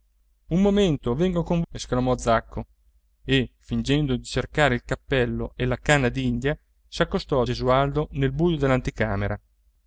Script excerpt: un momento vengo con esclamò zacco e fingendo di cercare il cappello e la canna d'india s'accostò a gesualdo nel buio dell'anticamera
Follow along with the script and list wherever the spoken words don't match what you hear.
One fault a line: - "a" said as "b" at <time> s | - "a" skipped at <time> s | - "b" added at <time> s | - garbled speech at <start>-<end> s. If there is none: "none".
none